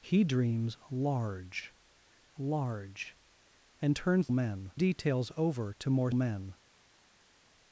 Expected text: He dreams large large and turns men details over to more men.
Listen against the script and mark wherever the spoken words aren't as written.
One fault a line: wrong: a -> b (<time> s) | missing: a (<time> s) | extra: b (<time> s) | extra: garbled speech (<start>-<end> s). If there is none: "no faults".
no faults